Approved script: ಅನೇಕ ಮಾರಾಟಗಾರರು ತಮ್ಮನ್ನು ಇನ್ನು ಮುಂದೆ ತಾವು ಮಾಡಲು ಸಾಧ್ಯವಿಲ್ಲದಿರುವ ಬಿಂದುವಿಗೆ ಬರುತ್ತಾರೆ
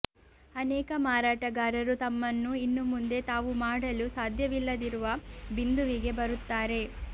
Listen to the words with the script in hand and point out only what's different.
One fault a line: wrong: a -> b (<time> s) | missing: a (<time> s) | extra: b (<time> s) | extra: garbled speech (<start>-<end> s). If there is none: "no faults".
no faults